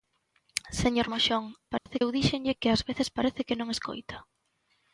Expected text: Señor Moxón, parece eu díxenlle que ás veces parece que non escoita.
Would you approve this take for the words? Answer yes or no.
yes